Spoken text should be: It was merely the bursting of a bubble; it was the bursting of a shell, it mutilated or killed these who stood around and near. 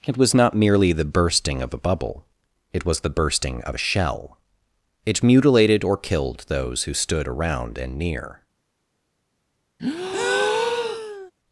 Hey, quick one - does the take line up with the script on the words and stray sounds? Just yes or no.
no